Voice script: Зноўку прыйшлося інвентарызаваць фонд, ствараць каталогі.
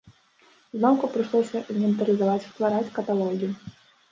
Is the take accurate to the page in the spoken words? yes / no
no